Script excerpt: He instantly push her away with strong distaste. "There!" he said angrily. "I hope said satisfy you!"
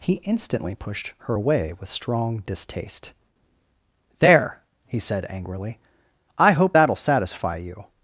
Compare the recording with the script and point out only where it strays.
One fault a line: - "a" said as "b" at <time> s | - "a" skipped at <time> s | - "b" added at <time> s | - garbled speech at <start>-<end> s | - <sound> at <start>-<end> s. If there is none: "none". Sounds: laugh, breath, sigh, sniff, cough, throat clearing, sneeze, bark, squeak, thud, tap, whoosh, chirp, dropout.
- "push" said as "pushed" at 0.7 s
- "said" said as "that'll" at 6.7 s